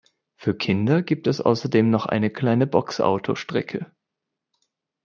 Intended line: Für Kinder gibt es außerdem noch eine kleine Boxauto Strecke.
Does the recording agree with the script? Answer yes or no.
yes